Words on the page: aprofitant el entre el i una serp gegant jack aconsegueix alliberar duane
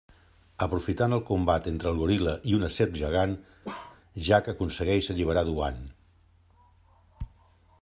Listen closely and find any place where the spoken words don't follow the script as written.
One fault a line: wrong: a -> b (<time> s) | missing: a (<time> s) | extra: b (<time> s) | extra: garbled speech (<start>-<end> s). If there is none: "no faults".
extra: combat (1.3 s)
extra: goril·la (2.0 s)